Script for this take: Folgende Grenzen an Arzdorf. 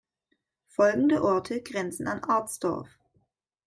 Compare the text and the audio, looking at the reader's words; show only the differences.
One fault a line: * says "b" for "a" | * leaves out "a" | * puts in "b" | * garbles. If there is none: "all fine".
* puts in "Orte"